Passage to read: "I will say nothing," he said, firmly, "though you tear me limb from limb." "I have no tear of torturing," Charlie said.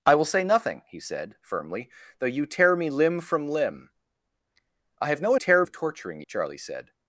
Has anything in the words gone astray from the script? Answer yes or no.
no